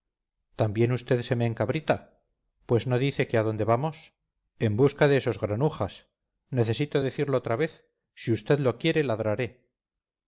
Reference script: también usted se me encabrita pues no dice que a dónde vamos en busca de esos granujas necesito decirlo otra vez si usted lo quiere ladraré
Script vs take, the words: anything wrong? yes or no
no